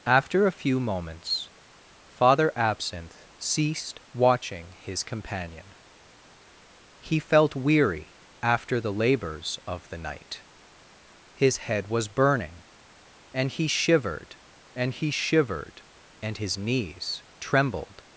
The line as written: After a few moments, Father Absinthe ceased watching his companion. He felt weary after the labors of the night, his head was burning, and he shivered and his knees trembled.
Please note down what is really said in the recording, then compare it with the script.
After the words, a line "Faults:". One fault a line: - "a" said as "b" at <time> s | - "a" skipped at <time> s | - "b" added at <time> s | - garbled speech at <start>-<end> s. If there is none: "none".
After a few moments, Father Absinthe ceased watching his companion. He felt weary after the labors of the night, his head was burning, and he shivered and he shivered and his knees trembled.
Faults:
- "he shivered and" added at 14.9 s